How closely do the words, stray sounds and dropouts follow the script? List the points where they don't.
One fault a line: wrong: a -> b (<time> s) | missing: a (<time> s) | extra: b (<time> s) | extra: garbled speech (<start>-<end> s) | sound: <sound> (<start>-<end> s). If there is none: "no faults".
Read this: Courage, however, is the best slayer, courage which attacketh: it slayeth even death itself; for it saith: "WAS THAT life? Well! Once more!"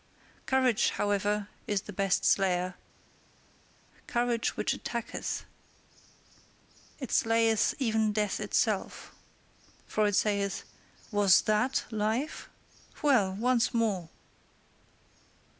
no faults